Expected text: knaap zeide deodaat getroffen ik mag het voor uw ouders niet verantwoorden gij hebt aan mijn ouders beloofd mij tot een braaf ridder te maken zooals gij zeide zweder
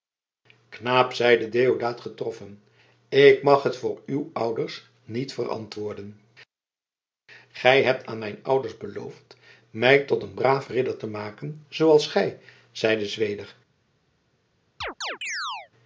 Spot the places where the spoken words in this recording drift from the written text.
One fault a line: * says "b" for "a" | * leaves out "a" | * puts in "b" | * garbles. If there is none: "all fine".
all fine